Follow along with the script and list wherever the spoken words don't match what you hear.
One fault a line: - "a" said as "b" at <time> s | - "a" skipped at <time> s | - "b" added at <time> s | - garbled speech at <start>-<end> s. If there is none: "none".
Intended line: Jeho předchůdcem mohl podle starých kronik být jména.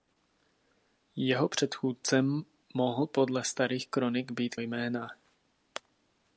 none